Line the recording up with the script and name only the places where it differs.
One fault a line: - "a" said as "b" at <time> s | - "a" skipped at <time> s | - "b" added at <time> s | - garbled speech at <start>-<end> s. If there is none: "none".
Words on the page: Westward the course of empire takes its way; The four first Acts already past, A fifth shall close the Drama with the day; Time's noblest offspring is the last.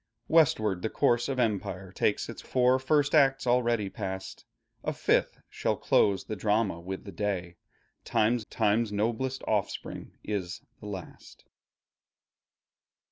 - "way The" skipped at 2.5 s
- "Time's" added at 8.5 s